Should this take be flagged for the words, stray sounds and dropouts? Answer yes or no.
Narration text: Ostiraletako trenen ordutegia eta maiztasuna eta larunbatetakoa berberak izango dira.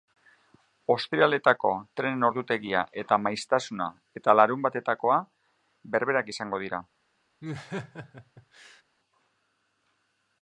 yes